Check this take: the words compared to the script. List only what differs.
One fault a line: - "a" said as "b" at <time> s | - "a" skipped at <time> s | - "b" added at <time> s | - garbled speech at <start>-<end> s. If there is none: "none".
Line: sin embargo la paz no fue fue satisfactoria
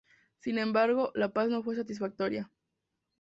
- "fue" skipped at 1.7 s